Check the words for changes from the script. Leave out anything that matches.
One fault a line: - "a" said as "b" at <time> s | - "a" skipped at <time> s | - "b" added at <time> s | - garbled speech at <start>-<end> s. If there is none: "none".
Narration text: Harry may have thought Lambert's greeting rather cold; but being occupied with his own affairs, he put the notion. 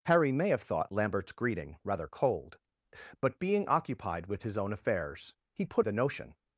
none